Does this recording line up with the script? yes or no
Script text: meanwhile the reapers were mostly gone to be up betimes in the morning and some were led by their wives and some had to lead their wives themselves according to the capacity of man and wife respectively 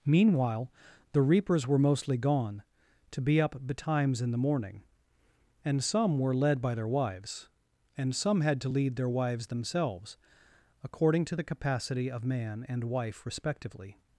yes